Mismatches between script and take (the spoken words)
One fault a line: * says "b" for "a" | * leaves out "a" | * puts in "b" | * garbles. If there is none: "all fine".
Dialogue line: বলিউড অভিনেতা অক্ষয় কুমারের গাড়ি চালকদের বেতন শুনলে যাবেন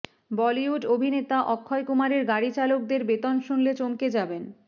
* puts in "চমকে"